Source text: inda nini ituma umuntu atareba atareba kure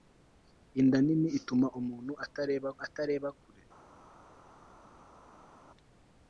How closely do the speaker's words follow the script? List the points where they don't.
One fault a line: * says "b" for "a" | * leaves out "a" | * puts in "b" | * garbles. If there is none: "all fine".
all fine